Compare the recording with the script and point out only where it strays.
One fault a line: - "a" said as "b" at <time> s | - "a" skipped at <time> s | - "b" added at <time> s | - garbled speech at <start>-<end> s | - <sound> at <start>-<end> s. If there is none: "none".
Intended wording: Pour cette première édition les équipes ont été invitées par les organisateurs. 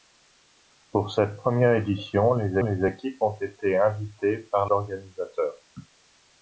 - "les" added at 2.6 s
- "les" skipped at 4.7 s